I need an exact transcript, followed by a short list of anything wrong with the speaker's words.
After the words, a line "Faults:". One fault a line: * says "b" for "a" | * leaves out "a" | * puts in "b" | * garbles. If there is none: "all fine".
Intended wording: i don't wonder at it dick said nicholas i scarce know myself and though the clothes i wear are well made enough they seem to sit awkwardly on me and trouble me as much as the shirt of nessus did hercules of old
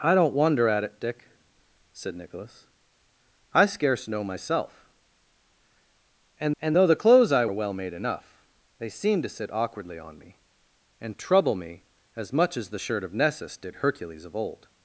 i don't wonder at it dick said nicholas i scarce know myself and and though the clothes i are well made enough they seem to sit awkwardly on me and trouble me as much as the shirt of nessus did hercules of old
Faults:
* puts in "and"
* leaves out "wear"